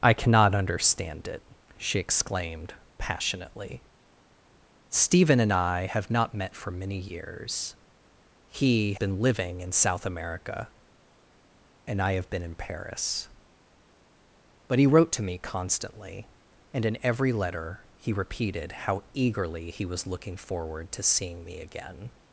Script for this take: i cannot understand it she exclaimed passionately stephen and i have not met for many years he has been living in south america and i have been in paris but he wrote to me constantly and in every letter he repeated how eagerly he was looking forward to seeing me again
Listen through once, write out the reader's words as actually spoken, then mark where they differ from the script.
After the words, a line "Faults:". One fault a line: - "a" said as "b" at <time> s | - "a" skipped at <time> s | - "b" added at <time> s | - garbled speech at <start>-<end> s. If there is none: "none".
i cannot understand it she exclaimed passionately stephen and i have not met for many years he been living in south america and i have been in paris but he wrote to me constantly and in every letter he repeated how eagerly he was looking forward to seeing me again
Faults:
- "has" skipped at 8.9 s